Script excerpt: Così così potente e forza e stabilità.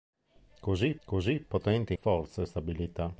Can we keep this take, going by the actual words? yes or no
yes